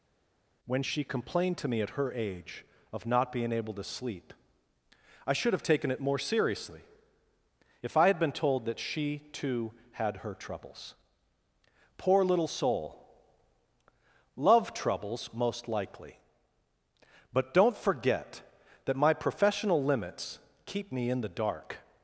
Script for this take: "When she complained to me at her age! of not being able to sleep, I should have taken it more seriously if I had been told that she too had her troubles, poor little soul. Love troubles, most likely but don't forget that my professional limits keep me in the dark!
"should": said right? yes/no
yes